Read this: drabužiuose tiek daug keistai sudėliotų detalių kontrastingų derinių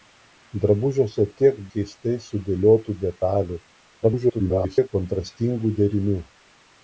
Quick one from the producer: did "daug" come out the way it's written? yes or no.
no